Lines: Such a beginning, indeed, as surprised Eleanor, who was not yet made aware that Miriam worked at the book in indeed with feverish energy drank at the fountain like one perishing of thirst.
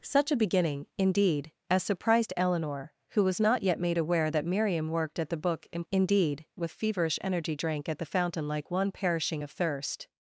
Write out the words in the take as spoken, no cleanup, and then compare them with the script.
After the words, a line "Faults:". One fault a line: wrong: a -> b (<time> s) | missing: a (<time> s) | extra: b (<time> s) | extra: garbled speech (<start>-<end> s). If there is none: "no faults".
Such a beginning, indeed, as surprised Eleanor, who was not yet made aware that Miriam worked at the book in indeed with feverish energy drank at the fountain like one perishing of thirst.
Faults:
no faults